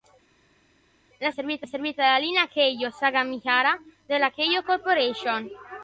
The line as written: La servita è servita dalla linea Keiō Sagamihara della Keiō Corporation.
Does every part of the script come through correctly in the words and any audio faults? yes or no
yes